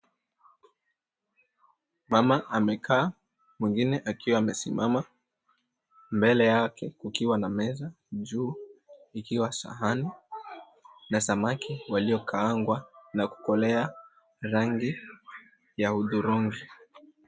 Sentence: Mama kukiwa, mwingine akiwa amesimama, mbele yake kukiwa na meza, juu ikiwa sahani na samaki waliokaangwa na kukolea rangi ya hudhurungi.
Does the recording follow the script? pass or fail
fail